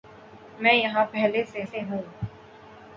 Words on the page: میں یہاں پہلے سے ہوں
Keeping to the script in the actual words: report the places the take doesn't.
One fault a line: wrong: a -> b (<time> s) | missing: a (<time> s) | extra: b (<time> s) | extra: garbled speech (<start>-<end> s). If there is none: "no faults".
extra: سے (1.6 s)